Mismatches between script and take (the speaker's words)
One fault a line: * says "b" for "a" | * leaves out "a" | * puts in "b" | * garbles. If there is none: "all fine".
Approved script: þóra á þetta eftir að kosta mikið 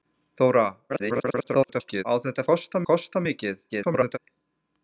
* garbles
* says "kosta" for "eftir"
* garbles